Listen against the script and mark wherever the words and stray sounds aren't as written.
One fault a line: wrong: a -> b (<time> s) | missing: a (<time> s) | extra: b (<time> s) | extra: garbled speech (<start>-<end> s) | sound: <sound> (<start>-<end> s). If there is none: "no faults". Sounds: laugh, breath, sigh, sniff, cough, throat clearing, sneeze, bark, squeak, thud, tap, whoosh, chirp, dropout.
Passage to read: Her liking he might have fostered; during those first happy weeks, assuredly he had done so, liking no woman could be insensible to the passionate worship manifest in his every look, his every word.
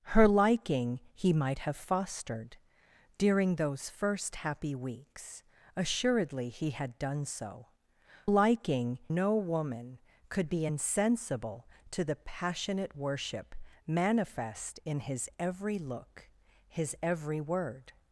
no faults